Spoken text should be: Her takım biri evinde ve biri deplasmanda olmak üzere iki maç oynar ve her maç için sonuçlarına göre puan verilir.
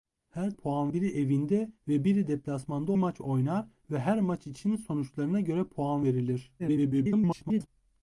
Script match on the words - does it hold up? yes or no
no